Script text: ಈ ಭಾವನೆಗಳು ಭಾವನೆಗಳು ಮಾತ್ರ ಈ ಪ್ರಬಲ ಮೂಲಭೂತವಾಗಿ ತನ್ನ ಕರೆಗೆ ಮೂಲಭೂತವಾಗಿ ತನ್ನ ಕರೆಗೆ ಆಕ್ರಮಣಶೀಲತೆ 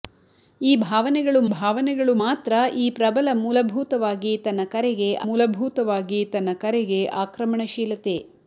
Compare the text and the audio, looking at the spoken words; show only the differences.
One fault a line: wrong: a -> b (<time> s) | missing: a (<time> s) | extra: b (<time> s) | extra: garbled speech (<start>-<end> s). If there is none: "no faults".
no faults